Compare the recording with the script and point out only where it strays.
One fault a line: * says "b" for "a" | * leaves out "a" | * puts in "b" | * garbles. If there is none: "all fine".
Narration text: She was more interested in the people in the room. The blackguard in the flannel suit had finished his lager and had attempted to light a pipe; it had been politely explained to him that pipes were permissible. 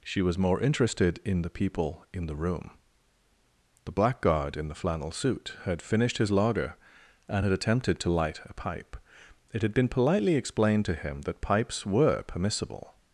all fine